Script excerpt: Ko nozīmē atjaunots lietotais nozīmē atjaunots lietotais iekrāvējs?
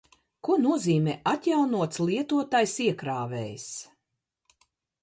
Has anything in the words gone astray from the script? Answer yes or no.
yes